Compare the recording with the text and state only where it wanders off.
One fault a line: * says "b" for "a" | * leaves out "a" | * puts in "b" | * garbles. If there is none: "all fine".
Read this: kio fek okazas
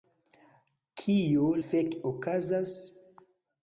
all fine